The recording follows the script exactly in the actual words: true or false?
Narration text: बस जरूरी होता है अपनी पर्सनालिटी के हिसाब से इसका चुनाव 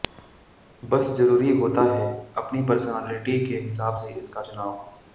true